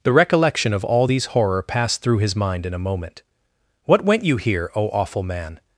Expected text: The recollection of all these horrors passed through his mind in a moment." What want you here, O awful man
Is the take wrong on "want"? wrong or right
wrong